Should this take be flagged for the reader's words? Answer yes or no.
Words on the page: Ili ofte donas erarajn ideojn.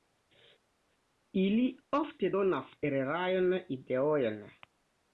no